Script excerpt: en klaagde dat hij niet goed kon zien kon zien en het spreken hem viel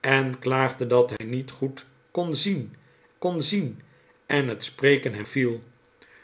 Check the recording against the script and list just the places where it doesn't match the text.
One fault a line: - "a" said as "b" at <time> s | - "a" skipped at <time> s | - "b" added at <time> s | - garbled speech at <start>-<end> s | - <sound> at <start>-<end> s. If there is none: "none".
- dropout at 1.2-1.2 s